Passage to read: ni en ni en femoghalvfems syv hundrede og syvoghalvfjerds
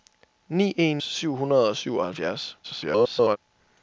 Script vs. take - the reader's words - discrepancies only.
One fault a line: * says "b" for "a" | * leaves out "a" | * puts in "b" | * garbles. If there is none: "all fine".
* leaves out "ni en femoghalvfems"
* garbles